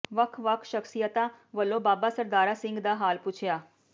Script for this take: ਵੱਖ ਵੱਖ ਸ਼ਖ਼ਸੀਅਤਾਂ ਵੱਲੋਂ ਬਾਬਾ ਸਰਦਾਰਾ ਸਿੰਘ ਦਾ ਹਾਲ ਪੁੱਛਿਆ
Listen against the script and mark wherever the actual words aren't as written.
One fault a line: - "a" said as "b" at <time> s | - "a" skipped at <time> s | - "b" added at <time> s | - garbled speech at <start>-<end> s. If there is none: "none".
none